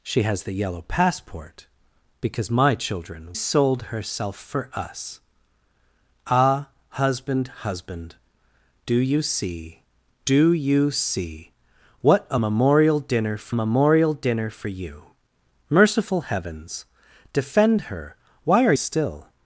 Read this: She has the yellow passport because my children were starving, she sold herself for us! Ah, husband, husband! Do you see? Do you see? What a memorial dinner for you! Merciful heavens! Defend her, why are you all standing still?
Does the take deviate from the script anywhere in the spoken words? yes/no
yes